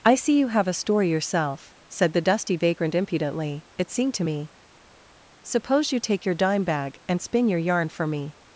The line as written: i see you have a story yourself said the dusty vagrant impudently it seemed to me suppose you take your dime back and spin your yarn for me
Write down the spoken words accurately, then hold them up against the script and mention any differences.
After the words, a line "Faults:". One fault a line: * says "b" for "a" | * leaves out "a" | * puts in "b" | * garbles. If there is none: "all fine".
i see you have a story yourself said the dusty vagrant impudently it seemed to me suppose you take your dime bag and spin your yarn for me
Faults:
* says "bag" for "back"